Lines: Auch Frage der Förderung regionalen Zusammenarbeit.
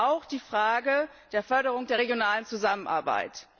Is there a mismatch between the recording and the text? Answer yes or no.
yes